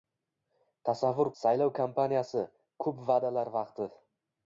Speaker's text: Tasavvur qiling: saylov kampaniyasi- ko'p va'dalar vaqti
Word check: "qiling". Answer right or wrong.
wrong